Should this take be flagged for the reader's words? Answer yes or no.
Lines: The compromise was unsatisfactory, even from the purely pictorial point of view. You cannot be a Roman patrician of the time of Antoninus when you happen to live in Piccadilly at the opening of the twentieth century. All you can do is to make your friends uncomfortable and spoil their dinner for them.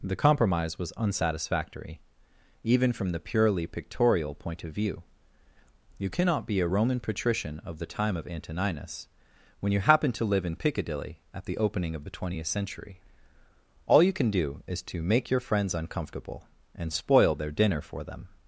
no